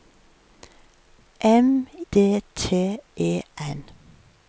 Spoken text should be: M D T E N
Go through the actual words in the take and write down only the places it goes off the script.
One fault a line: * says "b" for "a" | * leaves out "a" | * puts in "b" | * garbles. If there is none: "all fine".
all fine